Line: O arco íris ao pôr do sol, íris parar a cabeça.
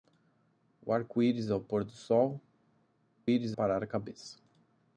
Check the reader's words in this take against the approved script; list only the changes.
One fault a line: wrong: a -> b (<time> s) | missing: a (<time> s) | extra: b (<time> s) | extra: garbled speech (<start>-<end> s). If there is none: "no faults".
no faults